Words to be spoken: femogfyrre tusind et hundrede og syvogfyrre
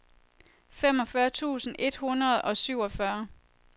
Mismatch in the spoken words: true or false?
false